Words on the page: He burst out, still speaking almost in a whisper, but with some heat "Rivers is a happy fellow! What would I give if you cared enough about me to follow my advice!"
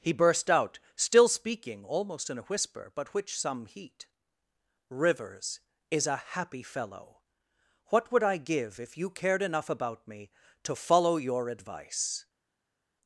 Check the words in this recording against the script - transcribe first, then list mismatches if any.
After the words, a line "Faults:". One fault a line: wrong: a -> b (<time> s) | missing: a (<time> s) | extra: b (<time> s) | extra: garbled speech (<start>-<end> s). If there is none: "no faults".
He burst out, still speaking almost in a whisper, but which some heat "Rivers is a happy fellow! What would I give if you cared enough about me to follow your advice!"
Faults:
wrong: with -> which (3.1 s)
wrong: my -> your (11.2 s)